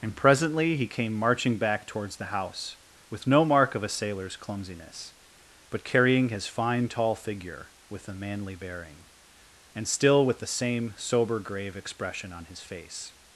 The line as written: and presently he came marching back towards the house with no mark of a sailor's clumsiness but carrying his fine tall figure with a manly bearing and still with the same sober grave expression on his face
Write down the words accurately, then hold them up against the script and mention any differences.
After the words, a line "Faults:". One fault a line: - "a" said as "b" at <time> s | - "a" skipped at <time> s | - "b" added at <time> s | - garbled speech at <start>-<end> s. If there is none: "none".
and presently he came marching back towards the house with no mark of a sailor's clumsiness but carrying his fine tall figure with a manly bearing and still with the same sober grave expression on his face
Faults:
none